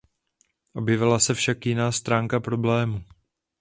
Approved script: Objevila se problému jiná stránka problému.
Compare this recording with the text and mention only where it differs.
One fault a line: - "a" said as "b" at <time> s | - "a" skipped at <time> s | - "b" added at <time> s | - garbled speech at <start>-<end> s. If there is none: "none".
- "problému" said as "však" at 1.3 s